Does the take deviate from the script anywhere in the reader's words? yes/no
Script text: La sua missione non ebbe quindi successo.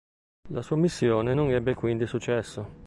no